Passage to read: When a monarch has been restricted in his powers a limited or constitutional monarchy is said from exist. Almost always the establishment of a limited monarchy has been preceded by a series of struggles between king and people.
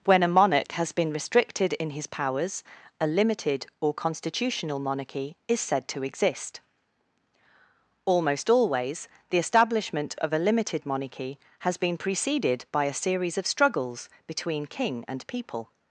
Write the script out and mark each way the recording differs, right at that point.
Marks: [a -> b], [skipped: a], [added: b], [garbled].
When a monarch has been restricted in his powers a limited or constitutional monarchy is said [from -> to] exist. Almost always the establishment of a limited monarchy has been preceded by a series of struggles between king and people.